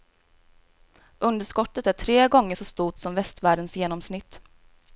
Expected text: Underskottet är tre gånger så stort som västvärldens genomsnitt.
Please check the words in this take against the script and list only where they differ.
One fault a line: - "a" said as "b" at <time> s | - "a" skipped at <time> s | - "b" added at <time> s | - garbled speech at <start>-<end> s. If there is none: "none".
none